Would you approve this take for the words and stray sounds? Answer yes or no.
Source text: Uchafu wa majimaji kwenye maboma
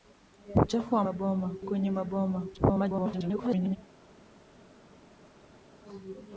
no